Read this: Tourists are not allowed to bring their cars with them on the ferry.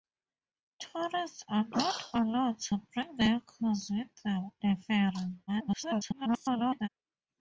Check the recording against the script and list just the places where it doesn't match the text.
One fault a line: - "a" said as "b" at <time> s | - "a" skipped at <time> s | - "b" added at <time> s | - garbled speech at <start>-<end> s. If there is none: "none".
- "on" skipped at 4.5 s
- garbled speech at 5.5-6.9 s